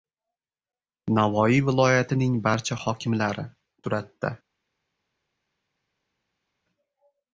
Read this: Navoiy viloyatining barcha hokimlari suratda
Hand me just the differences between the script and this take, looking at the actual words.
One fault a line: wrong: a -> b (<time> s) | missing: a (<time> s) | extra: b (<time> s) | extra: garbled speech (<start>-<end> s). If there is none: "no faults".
no faults